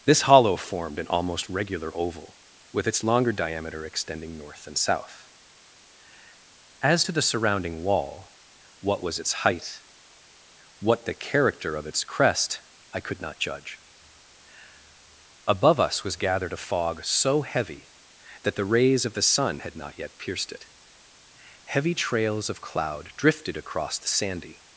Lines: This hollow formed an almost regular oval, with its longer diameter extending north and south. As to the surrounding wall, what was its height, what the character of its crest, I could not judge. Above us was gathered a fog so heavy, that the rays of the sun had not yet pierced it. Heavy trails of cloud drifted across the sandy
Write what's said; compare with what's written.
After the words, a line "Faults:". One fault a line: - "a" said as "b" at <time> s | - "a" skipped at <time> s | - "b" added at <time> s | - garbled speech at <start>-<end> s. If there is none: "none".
This hollow formed an almost regular oval, with its longer diameter extending north and south. As to the surrounding wall, what was its height, what the character of its crest, I could not judge. Above us was gathered a fog so heavy, that the rays of the sun had not yet pierced it. Heavy trails of cloud drifted across the sandy
Faults:
none